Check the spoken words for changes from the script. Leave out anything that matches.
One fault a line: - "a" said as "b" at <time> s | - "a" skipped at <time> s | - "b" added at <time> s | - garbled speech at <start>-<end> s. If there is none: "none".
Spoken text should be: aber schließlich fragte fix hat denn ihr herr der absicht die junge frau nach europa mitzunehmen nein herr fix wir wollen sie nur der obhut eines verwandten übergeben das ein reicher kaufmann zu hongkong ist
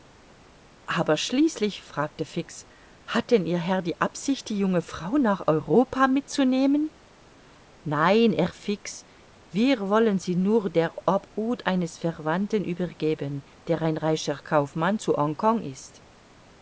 - "der" said as "die" at 3.8 s
- "das" said as "der" at 13.7 s